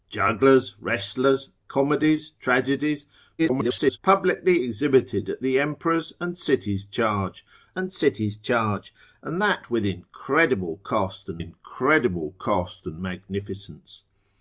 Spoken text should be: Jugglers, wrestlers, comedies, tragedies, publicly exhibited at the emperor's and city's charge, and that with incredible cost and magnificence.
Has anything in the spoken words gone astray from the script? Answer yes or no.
yes